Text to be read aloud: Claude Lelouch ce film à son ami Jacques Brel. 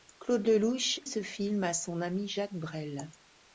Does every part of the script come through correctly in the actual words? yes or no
yes